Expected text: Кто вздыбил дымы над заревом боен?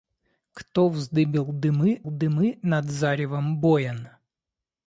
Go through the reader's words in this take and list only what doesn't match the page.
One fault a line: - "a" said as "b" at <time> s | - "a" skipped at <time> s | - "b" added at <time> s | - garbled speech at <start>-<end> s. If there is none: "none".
- "дымы" added at 2.0 s